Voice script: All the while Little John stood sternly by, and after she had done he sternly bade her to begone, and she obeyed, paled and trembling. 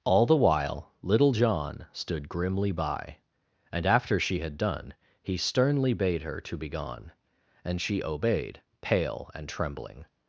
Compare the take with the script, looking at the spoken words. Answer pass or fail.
fail